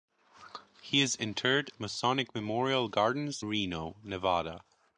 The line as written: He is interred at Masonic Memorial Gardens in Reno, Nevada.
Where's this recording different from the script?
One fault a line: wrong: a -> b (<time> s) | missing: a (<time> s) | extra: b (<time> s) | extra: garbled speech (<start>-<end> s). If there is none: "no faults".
missing: at (1.7 s)
missing: in (3.4 s)